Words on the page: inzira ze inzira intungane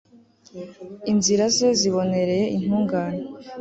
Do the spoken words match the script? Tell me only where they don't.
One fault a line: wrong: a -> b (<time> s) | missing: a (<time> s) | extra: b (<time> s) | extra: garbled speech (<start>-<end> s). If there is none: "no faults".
wrong: inzira -> zibonereye (1.8 s)